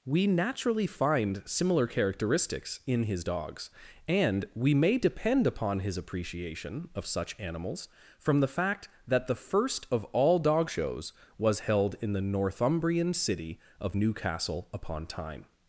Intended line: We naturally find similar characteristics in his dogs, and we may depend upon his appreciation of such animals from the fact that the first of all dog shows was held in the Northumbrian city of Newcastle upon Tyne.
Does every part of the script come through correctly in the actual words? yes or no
yes